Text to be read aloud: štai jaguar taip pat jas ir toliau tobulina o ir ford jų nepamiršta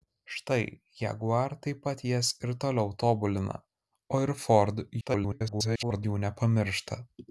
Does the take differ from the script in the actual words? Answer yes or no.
yes